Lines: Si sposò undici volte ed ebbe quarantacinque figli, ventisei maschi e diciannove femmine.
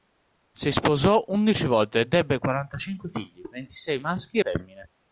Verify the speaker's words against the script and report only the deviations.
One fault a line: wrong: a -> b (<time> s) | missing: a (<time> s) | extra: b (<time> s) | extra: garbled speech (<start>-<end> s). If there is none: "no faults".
missing: e diciannove (4.4 s)